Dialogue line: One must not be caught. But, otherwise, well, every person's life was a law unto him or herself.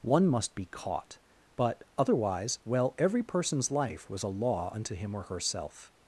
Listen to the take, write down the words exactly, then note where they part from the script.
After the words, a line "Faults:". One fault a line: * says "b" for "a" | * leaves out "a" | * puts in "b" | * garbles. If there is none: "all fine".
One must be caught. But, otherwise, well, every person's life was a law unto him or herself.
Faults:
* leaves out "not"